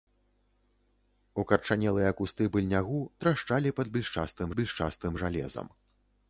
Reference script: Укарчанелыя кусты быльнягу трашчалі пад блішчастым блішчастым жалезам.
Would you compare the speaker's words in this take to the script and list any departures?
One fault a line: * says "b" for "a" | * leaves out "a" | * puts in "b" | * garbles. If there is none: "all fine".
all fine